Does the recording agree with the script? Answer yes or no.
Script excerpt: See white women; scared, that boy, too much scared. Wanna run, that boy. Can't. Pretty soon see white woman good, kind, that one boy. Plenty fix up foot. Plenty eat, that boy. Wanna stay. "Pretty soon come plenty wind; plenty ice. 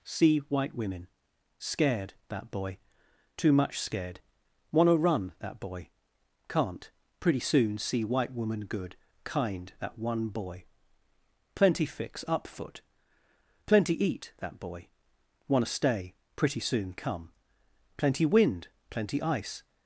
yes